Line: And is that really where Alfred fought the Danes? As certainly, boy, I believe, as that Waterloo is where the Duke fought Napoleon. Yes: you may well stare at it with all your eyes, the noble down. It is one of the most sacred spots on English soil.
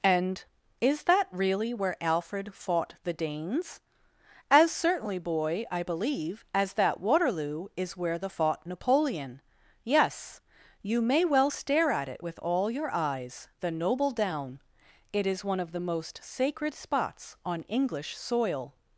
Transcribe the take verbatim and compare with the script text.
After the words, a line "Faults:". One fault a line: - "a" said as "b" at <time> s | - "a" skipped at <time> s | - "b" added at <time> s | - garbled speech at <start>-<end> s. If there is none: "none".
And is that really where Alfred fought the Danes? As certainly, boy, I believe, as that Waterloo is where the fought Napoleon. Yes: you may well stare at it with all your eyes, the noble down. It is one of the most sacred spots on English soil.
Faults:
- "Duke" skipped at 8.3 s